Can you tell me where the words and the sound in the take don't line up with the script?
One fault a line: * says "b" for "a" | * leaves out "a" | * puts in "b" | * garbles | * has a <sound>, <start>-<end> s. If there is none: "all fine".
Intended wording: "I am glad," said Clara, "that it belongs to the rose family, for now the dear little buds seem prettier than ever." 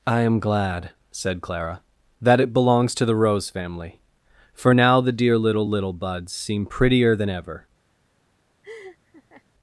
* puts in "little"
* has a laugh, 8.6-9.4 s